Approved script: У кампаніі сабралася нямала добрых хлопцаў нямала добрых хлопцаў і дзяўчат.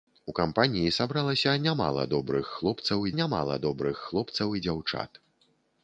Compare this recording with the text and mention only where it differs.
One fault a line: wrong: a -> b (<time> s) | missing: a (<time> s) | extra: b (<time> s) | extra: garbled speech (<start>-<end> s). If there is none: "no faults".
no faults